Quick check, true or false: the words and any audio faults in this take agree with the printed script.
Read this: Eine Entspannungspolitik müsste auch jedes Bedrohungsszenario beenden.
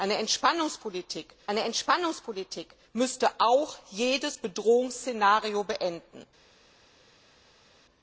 false